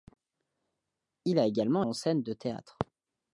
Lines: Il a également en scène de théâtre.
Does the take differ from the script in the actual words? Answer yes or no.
no